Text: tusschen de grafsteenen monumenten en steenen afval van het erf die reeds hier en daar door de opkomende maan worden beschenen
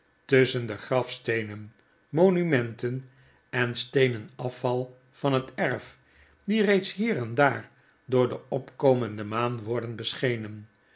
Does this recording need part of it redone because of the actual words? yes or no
no